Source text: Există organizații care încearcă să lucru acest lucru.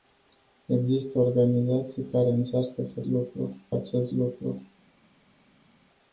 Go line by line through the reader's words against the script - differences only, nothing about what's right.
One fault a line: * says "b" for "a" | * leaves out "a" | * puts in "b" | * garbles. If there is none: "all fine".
all fine